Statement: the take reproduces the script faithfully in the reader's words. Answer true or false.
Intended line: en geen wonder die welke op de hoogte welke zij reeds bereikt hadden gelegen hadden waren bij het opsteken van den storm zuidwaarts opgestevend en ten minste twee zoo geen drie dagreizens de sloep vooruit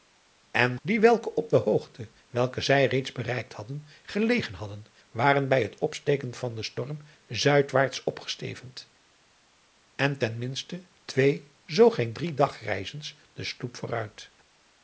false